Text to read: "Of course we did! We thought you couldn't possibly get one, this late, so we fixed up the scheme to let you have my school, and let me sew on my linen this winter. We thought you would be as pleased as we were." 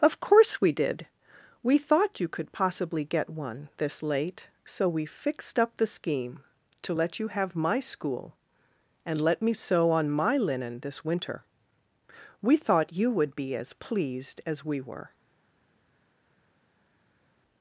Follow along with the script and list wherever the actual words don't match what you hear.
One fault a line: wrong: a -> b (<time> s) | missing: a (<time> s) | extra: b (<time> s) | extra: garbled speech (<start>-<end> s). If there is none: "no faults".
wrong: couldn't -> could (2.3 s)